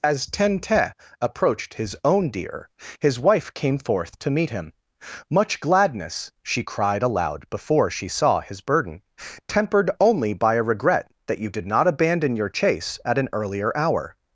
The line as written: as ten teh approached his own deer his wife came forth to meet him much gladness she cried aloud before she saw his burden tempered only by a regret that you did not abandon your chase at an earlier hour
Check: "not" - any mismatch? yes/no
no